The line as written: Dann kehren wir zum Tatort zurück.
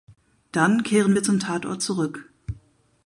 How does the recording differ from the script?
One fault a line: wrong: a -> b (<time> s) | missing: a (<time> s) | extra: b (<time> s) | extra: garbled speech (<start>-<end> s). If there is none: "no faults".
no faults